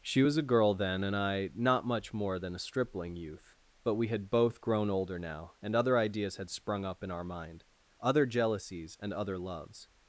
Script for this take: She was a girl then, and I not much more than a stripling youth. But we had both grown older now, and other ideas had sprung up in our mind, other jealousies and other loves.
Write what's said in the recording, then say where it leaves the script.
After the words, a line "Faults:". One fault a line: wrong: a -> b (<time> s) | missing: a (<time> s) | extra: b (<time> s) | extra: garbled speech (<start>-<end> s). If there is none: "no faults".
She was a girl then, and I not much more than a stripling youth. But we had both grown older now, and other ideas had sprung up in our mind, other jealousies and other loves.
Faults:
no faults